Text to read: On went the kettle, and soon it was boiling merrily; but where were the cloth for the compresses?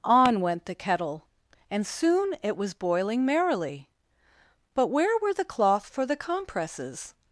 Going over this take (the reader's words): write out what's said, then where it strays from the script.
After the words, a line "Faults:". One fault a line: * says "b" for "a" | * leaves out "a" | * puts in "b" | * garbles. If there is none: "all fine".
On went the kettle, and soon it was boiling merrily; but where were the cloth for the compresses?
Faults:
all fine